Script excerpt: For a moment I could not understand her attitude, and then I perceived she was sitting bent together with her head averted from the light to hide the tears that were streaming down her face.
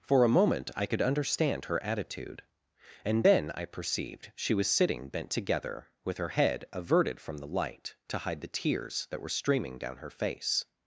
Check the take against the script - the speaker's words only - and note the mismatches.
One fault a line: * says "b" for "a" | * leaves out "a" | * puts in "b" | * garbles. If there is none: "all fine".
* leaves out "not"